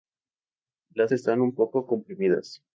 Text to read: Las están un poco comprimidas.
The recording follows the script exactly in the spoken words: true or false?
true